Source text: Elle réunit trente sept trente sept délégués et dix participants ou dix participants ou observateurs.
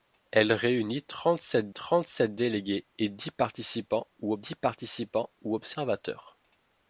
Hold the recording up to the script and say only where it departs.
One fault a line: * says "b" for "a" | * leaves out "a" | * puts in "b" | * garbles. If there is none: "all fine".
all fine